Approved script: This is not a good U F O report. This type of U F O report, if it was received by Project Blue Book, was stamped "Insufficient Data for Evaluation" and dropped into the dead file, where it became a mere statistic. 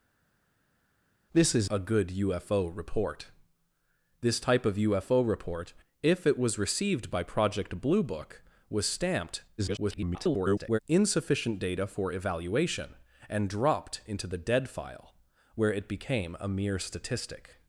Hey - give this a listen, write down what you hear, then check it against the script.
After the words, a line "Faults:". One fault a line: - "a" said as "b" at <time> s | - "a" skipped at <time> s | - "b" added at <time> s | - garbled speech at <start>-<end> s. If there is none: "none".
This is a good U F O report. This type of U F O report, if it was received by Project Blue Book, was stamped [garbled] "Insufficient Data for Evaluation" and dropped into the dead file, where it became a mere statistic.
Faults:
- "not" skipped at 1.7 s
- garbled speech at 9.6-10.8 s